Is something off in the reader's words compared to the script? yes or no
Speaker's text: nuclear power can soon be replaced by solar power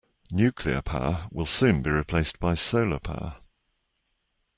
yes